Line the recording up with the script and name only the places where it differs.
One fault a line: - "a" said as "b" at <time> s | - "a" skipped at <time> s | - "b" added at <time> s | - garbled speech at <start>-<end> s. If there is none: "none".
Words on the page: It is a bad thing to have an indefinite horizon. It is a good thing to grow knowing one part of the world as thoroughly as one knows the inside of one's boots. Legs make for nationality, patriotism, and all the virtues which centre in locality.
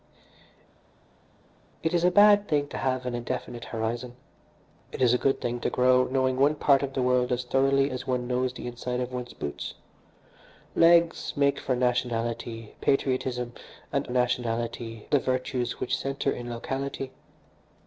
- "all" said as "nationality" at 14.1 s